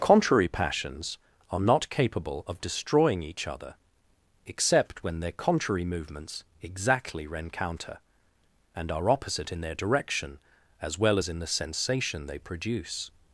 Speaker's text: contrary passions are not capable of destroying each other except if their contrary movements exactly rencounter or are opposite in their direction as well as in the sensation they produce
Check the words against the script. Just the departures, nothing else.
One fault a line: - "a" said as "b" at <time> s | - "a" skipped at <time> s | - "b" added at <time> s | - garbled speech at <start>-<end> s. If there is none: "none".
- "if" said as "when" at 5.0 s
- "or" said as "and" at 8.8 s